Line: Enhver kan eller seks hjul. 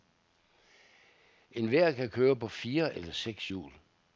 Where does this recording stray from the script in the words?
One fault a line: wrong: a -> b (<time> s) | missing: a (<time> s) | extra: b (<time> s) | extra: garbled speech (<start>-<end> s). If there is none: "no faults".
extra: køre på fire (2.1 s)